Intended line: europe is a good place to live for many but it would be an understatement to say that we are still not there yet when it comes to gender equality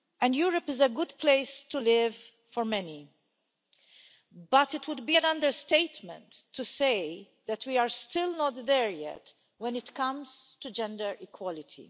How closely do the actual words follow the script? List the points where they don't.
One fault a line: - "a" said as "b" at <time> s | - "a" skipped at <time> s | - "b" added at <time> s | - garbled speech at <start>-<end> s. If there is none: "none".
none